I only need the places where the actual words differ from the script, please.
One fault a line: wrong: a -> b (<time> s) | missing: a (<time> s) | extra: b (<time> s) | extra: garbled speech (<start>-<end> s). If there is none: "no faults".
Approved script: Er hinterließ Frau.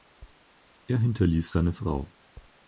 extra: seine (1.5 s)